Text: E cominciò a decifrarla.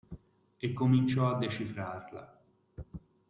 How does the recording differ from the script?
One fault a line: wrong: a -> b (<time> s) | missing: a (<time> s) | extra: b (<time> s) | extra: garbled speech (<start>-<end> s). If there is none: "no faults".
no faults